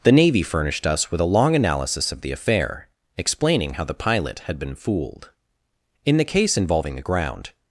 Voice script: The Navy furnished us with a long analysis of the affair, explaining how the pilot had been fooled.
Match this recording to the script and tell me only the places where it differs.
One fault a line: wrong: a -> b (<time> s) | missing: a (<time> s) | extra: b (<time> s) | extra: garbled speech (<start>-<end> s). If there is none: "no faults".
extra: In the case involving the ground (6.1 s)